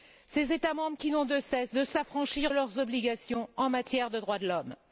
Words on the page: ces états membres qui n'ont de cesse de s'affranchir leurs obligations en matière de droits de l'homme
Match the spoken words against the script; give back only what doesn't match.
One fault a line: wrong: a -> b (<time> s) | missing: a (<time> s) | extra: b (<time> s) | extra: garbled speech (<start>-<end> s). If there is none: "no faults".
no faults